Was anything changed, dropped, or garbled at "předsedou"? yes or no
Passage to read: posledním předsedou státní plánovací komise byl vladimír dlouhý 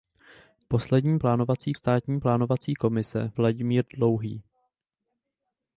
yes